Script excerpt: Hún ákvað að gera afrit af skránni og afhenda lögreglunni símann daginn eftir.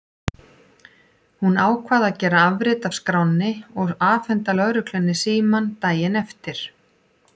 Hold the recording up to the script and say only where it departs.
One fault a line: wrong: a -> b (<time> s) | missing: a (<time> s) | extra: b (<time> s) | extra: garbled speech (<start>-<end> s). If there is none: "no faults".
no faults